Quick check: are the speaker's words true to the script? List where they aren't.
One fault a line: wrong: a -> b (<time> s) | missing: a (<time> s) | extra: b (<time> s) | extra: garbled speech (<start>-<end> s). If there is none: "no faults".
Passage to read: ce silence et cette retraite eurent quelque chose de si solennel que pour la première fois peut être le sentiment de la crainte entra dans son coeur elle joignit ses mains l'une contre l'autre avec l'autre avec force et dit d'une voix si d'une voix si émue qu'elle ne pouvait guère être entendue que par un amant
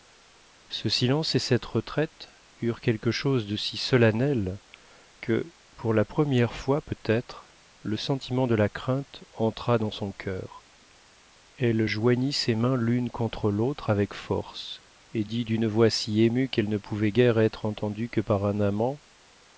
missing: l'autre avec (14.1 s)
missing: d'une voix si (16.2 s)